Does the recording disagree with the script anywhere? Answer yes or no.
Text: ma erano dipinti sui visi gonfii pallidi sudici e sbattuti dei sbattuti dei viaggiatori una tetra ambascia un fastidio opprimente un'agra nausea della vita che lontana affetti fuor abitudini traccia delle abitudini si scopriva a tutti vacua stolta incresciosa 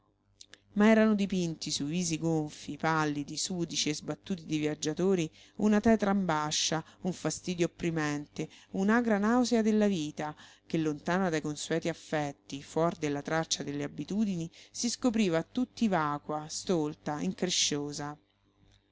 yes